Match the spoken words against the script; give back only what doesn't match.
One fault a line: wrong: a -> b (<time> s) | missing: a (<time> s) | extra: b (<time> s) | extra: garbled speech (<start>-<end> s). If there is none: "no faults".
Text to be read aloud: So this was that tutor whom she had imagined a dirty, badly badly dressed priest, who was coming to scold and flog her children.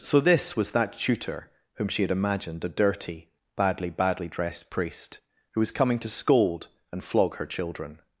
no faults